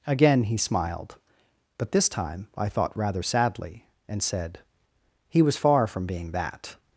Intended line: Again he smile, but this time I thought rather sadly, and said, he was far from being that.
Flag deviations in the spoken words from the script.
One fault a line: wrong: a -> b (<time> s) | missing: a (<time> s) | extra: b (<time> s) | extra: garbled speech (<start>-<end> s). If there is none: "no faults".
wrong: smile -> smiled (0.6 s)